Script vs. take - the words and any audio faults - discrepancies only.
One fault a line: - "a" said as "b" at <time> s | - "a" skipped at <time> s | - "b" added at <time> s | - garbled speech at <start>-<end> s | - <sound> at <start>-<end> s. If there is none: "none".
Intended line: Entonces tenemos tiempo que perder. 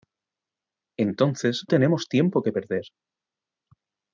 none